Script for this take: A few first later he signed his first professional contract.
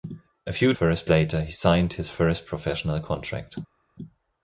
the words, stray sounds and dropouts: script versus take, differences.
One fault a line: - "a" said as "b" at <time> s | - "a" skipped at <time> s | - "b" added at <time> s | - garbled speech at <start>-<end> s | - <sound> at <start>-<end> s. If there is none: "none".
none